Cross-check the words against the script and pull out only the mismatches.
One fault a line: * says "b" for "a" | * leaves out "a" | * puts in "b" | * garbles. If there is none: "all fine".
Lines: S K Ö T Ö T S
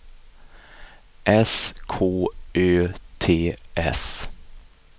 * leaves out "Ö T"